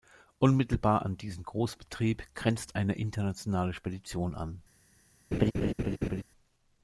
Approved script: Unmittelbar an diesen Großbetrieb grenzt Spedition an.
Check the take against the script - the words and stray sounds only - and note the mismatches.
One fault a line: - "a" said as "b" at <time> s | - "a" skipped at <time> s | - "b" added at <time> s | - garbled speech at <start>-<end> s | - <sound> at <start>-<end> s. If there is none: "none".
- "eine Internationale" added at 2.8 s
- laugh at 5.3-6.2 s